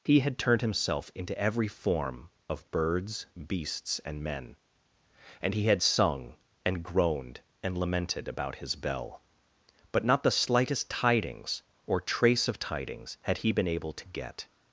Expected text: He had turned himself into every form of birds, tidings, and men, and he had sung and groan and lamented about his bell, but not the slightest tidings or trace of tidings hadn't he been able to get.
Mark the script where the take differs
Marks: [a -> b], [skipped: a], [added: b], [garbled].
He had turned himself into every form of birds, [tidings, -> beasts] and men, and he had sung and [groan -> groaned] and lamented about his bell, but not the slightest tidings or trace of tidings [hadn't -> had] he been able to get.